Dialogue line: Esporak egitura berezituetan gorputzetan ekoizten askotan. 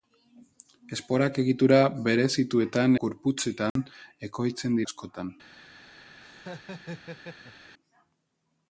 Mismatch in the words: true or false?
false